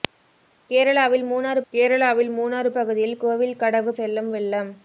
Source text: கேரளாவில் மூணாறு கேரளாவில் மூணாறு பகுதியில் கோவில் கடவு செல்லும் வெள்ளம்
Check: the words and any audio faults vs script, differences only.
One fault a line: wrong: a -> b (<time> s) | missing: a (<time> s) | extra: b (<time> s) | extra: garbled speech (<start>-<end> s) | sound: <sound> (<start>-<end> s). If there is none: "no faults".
no faults